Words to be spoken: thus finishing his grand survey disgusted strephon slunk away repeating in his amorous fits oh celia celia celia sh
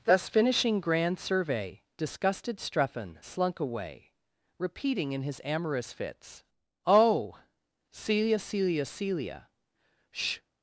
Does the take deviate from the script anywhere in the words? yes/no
yes